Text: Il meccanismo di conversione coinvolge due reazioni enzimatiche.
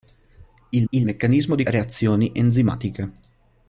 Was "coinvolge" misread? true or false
true